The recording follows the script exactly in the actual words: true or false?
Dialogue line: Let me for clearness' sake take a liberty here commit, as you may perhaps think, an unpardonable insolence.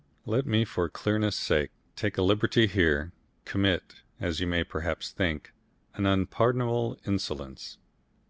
true